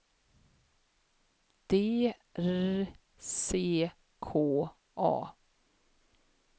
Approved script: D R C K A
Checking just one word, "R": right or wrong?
right